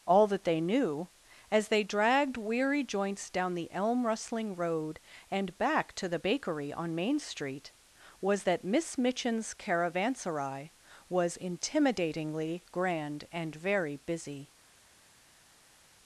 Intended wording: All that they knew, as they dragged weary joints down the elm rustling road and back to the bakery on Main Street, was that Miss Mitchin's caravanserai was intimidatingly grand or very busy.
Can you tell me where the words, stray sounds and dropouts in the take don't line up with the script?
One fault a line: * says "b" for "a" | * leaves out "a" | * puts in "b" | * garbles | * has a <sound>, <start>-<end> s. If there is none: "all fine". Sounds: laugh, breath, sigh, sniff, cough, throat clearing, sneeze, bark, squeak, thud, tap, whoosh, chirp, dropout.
* says "and" for "or"